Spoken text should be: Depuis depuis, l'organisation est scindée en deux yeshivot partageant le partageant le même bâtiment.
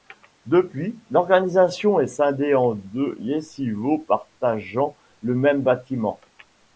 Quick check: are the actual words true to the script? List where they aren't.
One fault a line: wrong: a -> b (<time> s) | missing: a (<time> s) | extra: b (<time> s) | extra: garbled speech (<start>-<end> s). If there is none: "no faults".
missing: depuis (1.0 s)
missing: partageant le (5.3 s)